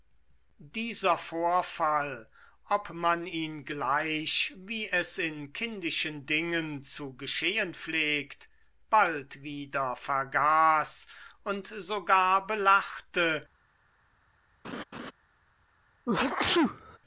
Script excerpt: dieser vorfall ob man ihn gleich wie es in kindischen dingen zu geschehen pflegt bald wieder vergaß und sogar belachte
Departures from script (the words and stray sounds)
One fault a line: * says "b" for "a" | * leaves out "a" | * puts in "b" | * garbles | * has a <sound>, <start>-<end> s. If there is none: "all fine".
* has a laugh, 14.6-15.1 s
* has a sneeze, 16.1-17.0 s